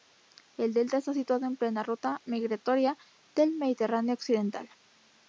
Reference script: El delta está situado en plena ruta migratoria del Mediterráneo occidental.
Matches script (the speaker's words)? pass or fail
pass